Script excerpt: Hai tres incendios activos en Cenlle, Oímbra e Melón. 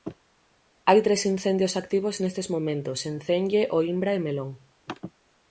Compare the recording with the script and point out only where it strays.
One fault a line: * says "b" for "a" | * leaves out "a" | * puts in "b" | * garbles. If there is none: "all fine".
* puts in "nestes momentos"